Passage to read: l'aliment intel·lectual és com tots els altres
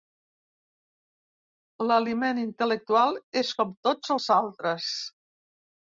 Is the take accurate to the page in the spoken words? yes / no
yes